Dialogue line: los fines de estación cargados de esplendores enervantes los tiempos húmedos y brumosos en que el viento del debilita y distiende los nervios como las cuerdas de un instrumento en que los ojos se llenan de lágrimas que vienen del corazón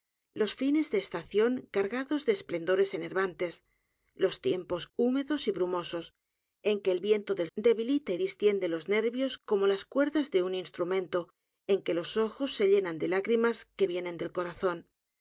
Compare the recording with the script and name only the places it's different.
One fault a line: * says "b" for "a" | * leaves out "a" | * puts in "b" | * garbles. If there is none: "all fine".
all fine